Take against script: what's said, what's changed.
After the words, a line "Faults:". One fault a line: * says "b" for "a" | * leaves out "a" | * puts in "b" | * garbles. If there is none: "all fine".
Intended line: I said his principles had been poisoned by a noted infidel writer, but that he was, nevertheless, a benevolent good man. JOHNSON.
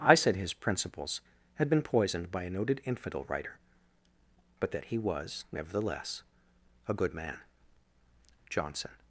I said his principles had been poisoned by a noted infidel writer, but that he was, nevertheless, a good man. JOHNSON.
Faults:
* leaves out "benevolent"